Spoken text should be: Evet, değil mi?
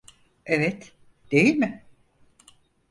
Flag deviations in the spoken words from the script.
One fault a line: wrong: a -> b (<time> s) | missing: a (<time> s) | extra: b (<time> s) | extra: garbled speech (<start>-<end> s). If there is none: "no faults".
no faults